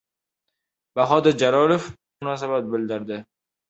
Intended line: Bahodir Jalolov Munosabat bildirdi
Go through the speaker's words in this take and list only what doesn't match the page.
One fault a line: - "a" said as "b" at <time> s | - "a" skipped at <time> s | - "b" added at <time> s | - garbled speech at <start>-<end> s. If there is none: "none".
none